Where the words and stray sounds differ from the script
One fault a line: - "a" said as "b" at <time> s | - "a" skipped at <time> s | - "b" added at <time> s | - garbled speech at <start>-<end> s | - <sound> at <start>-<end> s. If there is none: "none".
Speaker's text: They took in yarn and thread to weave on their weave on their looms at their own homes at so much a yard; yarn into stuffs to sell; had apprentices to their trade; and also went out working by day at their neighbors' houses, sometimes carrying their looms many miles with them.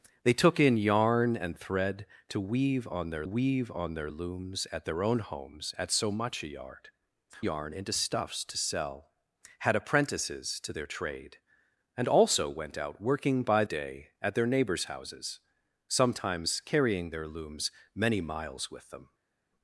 none